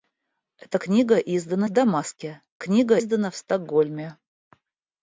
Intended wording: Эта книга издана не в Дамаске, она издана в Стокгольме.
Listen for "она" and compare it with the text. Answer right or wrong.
wrong